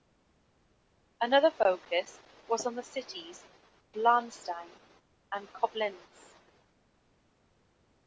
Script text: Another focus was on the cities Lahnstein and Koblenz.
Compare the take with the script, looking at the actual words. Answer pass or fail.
pass